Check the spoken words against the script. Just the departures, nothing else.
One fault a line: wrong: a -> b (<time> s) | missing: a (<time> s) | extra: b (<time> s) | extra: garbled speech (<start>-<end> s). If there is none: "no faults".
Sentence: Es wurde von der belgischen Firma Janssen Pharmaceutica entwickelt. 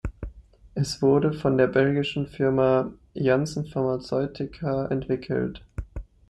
no faults